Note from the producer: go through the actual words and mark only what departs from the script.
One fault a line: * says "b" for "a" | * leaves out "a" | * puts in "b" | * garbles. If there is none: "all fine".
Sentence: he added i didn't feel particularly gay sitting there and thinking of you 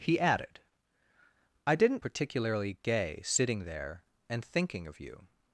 * leaves out "feel"